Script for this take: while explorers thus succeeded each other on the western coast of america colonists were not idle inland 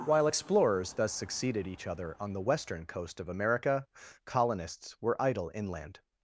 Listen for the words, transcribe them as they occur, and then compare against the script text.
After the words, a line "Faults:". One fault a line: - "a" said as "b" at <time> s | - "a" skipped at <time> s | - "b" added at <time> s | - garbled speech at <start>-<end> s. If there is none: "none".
while explorers thus succeeded each other on the western coast of america colonists were idle inland
Faults:
- "not" skipped at 5.2 s